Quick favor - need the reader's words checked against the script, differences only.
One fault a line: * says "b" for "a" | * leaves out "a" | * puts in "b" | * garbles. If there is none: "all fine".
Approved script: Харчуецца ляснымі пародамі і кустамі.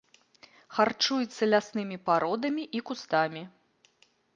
all fine